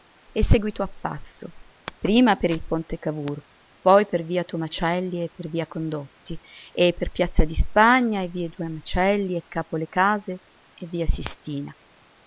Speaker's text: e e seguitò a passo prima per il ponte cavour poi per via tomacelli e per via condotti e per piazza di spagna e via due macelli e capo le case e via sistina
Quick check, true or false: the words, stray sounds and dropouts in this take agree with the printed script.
false